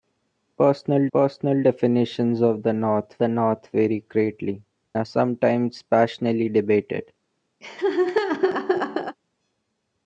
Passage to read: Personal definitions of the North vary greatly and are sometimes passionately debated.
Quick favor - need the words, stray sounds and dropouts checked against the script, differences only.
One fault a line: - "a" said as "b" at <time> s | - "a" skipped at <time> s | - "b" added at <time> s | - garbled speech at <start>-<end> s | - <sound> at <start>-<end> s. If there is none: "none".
- "personal" added at 1.1 s
- "the North" added at 3.2 s
- "and" skipped at 4.6 s
- laugh at 7.6-9.2 s